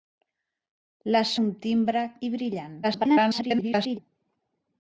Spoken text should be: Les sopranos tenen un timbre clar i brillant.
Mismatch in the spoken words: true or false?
true